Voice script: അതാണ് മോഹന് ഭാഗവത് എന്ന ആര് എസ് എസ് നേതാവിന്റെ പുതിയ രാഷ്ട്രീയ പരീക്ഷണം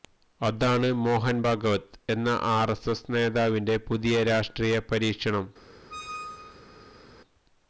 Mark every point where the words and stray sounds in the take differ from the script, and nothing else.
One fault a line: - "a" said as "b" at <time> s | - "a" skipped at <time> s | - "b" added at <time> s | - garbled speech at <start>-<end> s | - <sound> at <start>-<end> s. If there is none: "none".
- squeak at 5.9-7.0 s